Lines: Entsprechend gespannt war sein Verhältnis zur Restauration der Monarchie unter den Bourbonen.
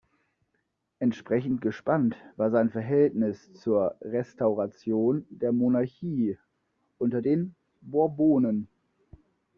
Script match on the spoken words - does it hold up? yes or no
yes